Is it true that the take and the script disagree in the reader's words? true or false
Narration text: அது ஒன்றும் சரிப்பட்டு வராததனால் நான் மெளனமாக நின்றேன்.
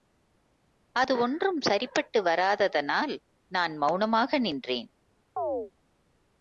false